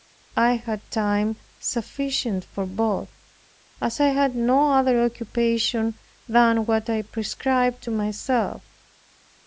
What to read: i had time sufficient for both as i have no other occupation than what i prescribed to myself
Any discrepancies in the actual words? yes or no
yes